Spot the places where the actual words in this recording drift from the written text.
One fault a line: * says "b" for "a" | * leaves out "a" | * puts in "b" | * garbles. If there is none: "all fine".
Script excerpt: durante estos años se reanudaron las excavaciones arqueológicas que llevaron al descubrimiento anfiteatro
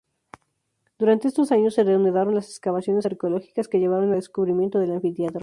* puts in "del"